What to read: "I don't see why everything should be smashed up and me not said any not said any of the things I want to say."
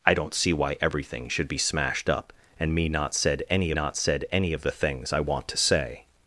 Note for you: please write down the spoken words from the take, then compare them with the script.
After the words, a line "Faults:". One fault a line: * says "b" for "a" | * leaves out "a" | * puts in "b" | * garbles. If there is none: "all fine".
"I don't see why everything should be smashed up and me not said any not said any of the things I want to say."
Faults:
all fine